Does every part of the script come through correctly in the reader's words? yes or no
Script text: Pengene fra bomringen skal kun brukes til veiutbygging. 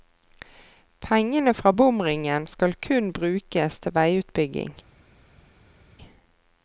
yes